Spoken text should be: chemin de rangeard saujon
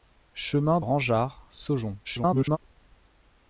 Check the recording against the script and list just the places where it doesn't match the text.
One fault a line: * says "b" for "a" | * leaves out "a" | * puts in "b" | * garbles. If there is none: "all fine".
* leaves out "de"
* garbles